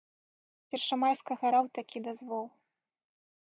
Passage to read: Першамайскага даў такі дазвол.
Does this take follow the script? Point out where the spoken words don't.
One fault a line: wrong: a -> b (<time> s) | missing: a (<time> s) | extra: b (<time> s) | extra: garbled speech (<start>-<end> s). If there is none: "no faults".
no faults